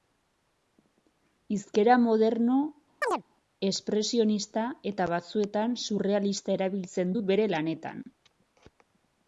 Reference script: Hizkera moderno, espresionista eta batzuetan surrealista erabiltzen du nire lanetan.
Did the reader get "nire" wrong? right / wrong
wrong